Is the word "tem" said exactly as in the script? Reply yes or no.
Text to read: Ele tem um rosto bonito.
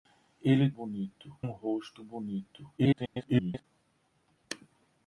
no